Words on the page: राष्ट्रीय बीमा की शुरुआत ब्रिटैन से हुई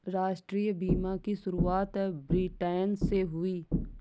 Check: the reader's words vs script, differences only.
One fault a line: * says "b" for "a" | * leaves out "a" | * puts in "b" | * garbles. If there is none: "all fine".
all fine